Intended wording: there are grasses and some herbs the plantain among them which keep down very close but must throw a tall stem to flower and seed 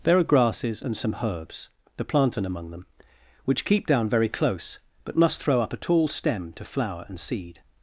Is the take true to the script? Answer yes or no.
no